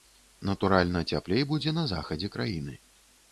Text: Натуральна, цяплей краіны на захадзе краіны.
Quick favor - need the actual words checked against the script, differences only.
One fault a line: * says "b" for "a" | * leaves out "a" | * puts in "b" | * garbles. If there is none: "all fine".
* says "будзе" for "краіны"